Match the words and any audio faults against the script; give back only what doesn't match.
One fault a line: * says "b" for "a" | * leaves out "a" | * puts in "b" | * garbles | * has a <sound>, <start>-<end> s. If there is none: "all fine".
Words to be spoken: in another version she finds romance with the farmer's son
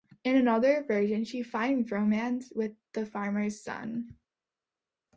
all fine